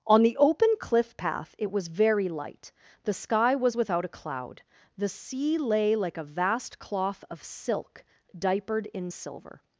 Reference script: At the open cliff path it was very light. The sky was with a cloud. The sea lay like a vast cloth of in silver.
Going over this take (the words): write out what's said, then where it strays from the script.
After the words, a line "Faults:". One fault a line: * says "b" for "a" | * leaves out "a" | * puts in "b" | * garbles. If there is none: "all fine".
On the open cliff path it was very light. The sky was without a cloud. The sea lay like a vast cloth of silk, diapered in silver.
Faults:
* says "On" for "At"
* says "without" for "with"
* puts in "silk diapered"